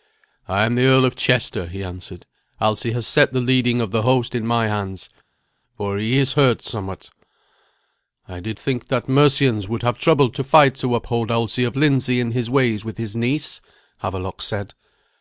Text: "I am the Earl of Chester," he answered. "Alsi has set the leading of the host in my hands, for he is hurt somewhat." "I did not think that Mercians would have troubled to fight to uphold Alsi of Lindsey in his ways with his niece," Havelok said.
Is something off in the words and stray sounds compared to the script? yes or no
yes